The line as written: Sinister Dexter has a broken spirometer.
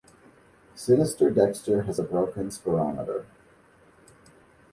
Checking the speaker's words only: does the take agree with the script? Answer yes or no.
yes